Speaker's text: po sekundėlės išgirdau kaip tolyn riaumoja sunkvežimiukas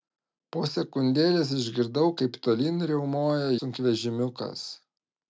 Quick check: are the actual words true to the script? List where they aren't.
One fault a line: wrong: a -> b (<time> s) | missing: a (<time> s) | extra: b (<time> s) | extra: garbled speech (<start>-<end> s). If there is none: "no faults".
no faults